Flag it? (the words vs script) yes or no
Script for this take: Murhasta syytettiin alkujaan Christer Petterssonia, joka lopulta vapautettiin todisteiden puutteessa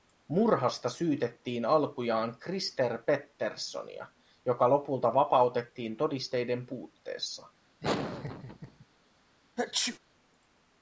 no